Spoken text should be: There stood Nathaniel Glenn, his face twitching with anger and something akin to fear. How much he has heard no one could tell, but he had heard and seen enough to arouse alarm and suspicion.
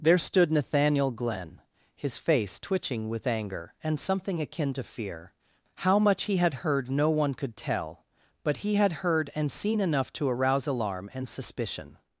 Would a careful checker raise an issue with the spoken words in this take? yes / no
yes